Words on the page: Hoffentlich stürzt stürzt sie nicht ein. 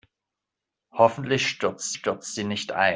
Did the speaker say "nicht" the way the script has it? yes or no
yes